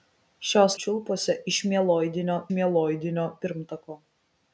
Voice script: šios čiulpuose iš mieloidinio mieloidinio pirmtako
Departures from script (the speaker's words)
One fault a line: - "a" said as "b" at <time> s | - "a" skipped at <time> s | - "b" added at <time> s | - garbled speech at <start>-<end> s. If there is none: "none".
none